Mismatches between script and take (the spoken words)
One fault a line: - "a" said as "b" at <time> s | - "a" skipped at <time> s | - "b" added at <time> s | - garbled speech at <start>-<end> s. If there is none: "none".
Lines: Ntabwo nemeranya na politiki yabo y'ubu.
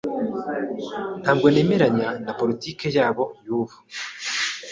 none